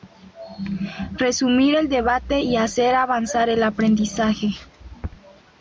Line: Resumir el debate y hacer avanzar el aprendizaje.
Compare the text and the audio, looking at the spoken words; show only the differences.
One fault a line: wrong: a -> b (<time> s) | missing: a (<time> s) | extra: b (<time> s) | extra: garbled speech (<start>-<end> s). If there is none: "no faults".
no faults